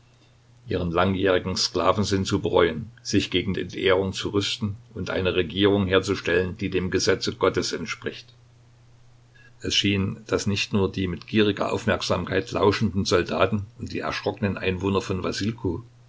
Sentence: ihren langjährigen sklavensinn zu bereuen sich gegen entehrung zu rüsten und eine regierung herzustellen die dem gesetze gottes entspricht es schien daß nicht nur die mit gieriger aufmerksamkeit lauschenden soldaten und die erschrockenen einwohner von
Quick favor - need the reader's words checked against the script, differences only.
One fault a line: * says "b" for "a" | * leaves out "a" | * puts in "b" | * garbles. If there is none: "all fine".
all fine